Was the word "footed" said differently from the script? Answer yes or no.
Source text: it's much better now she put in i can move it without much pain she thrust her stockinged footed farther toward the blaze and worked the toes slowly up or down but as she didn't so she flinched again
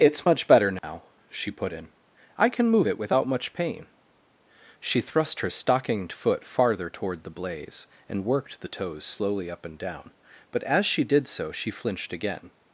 yes